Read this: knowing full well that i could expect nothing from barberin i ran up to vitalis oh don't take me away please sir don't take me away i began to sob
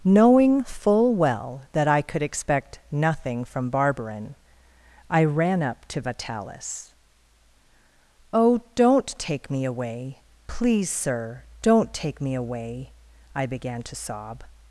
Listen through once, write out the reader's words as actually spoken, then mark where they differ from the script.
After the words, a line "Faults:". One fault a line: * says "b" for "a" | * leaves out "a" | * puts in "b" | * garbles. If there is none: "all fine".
knowing full well that i could expect nothing from barberin i ran up to vitalis oh don't take me away please sir don't take me away i began to sob
Faults:
all fine